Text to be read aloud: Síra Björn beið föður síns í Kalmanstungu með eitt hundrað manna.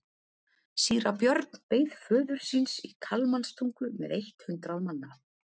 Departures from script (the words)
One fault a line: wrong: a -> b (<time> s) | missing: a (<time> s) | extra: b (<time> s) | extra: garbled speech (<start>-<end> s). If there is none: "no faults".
no faults